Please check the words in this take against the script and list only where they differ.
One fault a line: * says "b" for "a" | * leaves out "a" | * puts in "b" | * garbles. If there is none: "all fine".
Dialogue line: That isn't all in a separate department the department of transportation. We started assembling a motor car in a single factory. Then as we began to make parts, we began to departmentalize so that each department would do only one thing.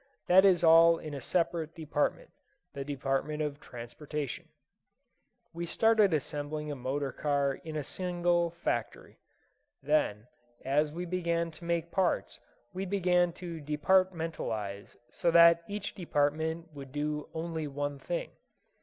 * says "is" for "isn't"